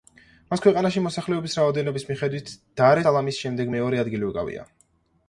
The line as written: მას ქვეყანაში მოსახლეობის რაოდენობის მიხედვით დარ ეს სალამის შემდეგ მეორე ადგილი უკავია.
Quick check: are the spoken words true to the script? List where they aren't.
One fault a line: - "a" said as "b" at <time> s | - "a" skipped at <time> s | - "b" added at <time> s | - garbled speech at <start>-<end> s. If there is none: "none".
- "ეს" skipped at 3.0 s